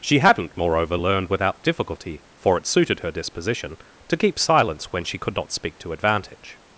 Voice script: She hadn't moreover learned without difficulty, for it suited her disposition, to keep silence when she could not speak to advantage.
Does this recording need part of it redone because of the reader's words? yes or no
no